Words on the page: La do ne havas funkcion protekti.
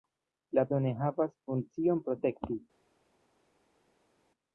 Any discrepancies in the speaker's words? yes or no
no